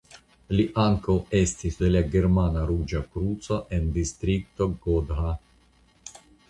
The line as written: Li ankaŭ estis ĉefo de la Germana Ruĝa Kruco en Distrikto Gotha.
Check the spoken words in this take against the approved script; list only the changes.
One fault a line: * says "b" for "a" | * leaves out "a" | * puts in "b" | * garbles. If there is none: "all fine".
* leaves out "ĉefo"